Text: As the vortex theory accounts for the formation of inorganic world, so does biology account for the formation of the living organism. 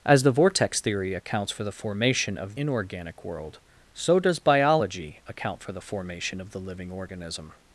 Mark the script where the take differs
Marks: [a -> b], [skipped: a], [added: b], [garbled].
As the vortex theory accounts for the formation of inorganic world, so does biology account for the formation of the living organism.